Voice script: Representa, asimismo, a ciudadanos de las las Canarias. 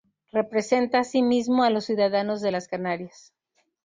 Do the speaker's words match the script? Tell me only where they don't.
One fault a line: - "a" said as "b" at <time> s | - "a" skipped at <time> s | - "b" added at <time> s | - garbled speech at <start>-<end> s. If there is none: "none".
- "los" added at 1.7 s
- "las" skipped at 2.7 s